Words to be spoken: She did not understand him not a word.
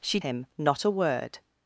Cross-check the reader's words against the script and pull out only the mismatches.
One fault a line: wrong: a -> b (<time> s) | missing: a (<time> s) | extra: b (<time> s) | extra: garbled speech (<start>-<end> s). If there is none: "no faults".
missing: did not understand (0.2 s)